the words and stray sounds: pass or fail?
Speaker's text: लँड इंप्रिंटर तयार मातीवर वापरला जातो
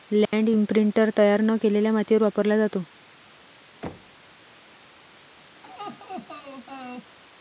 fail